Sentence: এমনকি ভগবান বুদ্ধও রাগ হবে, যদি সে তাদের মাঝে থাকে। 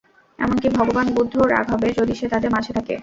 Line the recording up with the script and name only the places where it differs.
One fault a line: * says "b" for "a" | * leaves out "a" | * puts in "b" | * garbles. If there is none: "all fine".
all fine